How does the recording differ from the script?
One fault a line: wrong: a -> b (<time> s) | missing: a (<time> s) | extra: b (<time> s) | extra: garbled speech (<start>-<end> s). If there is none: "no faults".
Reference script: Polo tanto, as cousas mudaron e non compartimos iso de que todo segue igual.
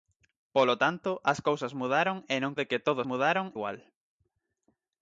missing: compartimos iso (2.6 s)
wrong: segue -> mudaron (3.1 s)